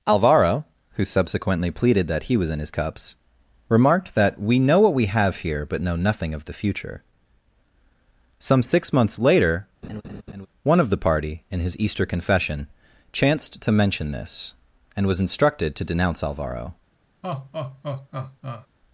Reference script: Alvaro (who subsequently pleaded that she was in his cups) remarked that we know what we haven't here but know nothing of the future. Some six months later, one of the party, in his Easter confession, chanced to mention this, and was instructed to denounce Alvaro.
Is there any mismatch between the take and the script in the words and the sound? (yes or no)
yes